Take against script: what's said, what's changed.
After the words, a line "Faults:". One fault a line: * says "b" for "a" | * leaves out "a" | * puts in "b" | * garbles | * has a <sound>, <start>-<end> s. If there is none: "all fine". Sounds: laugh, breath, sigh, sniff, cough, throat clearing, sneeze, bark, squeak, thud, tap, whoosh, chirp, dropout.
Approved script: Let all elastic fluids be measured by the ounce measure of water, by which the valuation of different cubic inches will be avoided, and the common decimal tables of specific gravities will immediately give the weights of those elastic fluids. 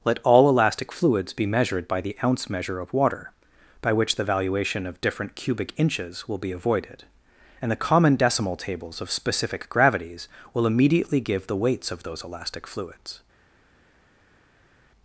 Let all elastic fluids be measured by the ounce measure of water, by which the valuation of different cubic inches will be avoided, and the common decimal tables of specific gravities will immediately give the weights of those elastic fluids.
Faults:
all fine